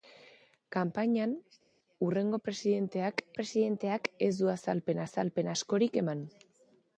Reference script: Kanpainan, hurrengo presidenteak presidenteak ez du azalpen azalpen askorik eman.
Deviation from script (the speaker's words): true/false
false